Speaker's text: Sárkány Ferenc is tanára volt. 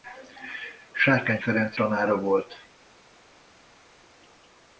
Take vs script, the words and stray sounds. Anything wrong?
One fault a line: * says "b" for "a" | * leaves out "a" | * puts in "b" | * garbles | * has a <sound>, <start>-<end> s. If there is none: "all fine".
* leaves out "is"